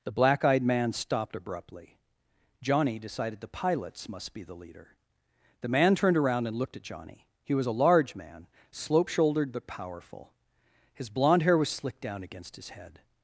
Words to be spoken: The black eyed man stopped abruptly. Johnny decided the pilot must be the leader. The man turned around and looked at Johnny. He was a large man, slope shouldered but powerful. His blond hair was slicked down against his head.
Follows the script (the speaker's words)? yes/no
no